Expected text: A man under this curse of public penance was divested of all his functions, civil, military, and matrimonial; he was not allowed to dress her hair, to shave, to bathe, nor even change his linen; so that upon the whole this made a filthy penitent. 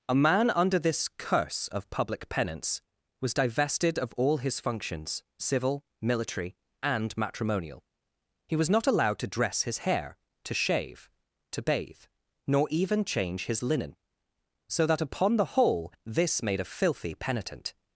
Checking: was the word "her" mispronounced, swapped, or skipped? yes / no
yes